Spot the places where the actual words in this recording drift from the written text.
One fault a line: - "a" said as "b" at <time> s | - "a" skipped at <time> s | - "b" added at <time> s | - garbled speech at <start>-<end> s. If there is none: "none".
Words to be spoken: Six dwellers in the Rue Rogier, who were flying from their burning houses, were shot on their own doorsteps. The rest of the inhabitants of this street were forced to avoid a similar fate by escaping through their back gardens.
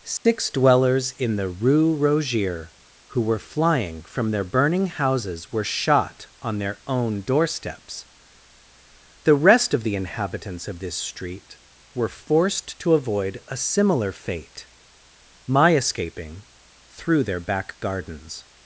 - "by" said as "my" at 15.4 s